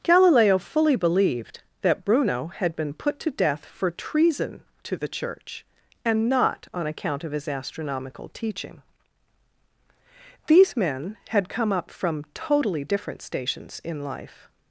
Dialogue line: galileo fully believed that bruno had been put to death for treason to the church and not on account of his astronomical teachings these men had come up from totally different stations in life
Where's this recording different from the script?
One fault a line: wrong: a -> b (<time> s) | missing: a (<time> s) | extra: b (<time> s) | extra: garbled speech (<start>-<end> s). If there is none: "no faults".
wrong: teachings -> teaching (8.3 s)